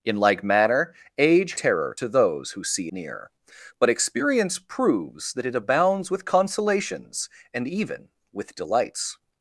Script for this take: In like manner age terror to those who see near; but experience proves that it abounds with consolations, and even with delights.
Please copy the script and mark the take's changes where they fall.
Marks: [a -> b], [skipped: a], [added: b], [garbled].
In like manner age terror to those who see near; but experience proves that it abounds with consolations, and even with delights.